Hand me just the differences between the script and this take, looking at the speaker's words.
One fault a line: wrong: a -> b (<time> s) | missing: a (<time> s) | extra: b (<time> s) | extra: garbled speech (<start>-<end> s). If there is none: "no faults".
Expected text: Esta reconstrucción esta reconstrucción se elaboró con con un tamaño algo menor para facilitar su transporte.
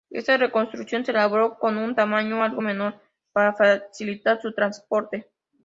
missing: esta reconstrucción (1.1 s)
missing: con (1.8 s)